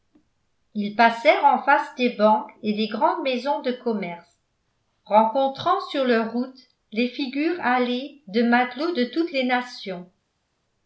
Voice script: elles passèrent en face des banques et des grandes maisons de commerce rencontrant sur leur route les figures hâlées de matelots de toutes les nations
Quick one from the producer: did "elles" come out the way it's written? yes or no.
no